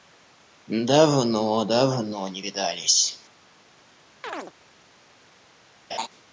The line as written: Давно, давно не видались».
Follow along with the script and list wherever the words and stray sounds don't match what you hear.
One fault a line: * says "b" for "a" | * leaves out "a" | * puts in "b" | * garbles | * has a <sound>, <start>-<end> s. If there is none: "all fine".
* has a chirp, 4.2-4.5 s
* has a laugh, 5.9-6.1 s